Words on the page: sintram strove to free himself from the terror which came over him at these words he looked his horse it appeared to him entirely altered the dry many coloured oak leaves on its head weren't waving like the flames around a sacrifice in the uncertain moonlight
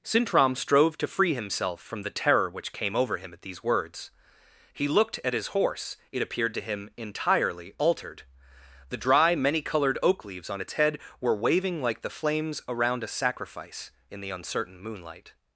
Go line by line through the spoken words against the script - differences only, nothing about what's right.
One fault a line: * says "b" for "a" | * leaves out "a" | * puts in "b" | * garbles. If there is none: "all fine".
* puts in "at"
* says "were" for "weren't"